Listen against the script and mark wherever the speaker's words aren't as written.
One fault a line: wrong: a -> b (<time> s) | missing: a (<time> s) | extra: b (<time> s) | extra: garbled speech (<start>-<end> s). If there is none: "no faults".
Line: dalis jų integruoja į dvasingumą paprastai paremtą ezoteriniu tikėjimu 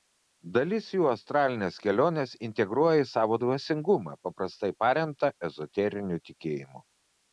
extra: astralines keliones (1.1 s)
extra: savo (3.1 s)